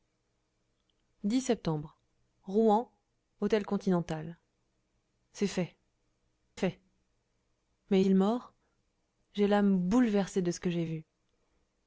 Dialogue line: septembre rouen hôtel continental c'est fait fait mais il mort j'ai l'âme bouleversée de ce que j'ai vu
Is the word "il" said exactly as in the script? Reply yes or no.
yes